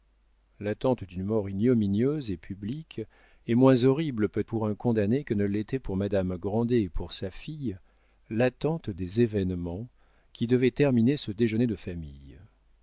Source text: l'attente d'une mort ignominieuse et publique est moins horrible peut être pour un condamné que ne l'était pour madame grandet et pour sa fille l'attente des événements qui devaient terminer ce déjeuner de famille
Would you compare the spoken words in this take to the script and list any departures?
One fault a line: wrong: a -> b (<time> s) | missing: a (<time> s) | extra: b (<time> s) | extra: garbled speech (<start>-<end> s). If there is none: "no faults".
missing: être (4.5 s)